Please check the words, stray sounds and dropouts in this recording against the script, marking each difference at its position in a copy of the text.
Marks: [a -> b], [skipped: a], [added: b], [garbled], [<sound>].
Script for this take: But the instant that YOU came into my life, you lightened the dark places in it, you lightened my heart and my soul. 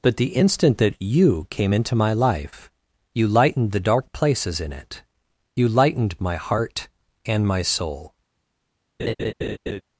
But the instant that YOU came into my life, you lightened the dark places in it, you lightened my heart and my soul. [laugh]